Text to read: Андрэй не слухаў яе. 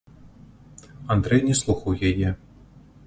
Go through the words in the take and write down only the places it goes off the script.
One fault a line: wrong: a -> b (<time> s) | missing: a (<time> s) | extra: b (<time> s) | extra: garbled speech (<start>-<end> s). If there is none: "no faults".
no faults